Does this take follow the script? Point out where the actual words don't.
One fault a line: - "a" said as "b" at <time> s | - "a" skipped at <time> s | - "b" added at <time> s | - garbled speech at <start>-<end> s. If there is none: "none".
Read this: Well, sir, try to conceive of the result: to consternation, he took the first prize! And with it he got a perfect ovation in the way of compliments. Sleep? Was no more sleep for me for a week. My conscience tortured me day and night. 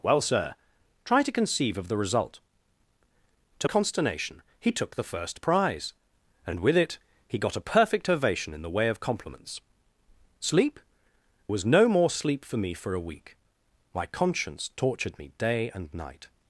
none